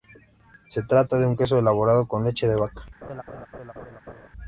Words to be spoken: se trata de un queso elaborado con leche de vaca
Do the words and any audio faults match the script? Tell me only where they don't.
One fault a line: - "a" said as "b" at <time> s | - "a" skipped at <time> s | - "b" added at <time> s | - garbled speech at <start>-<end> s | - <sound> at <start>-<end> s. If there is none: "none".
- laugh at 3.0-4.3 s